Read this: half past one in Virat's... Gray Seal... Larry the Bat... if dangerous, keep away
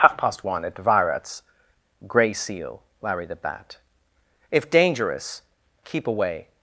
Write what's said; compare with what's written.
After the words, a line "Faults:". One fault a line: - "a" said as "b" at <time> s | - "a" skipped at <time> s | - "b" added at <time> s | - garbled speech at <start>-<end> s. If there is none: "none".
half past one at Virat's... Gray Seal... Larry the Bat... if dangerous, keep away
Faults:
- "in" said as "at" at 0.6 s